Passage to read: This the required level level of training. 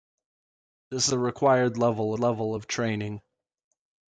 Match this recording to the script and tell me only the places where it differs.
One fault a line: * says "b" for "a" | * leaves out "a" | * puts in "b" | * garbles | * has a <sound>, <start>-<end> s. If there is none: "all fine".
all fine